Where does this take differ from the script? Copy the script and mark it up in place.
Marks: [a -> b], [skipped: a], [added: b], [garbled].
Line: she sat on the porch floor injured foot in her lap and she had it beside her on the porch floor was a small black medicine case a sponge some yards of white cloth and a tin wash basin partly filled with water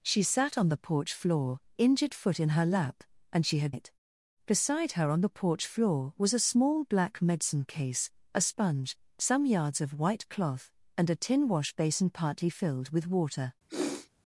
she sat on the porch floor injured foot in her lap and she had it beside her on the porch floor was a small black medicine case a sponge some yards of white cloth and a tin wash basin partly filled with water